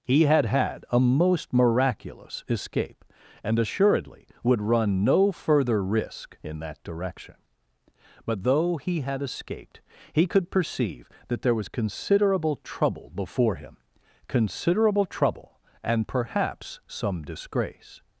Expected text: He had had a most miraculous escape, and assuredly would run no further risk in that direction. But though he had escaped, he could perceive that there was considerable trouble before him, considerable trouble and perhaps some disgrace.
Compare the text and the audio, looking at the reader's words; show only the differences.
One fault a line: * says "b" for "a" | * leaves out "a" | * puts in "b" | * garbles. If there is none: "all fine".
all fine